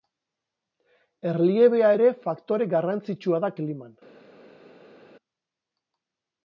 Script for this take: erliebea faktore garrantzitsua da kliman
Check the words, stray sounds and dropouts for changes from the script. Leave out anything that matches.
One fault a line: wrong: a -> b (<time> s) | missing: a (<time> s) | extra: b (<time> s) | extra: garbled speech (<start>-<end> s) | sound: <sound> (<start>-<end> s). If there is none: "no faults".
extra: ere (1.9 s)